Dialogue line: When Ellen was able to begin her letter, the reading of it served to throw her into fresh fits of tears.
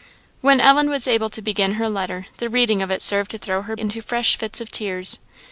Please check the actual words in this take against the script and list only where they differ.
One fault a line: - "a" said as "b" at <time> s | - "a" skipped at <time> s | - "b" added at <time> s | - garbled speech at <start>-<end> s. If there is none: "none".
none